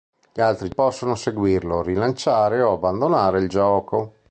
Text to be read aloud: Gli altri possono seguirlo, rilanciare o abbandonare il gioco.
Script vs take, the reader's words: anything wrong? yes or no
no